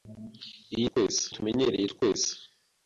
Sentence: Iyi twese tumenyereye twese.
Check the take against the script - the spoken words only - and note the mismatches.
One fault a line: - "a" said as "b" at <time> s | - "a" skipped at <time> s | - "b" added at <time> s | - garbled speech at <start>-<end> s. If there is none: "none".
none